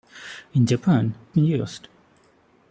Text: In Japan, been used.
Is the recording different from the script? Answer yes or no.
no